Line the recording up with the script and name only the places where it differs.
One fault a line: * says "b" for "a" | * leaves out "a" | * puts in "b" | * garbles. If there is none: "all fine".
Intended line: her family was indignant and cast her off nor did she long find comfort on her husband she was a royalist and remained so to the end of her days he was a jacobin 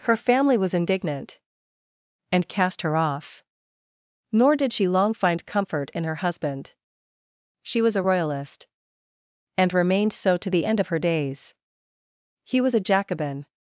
* says "in" for "on"